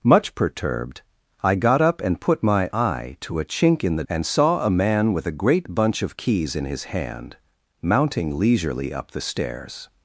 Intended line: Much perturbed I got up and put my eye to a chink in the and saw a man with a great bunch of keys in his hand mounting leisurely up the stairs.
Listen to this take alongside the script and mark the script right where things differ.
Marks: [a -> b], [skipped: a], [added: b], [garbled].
Much perturbed I got up and put my eye to a chink in the and saw a man with a great bunch of keys in his hand mounting leisurely up the stairs.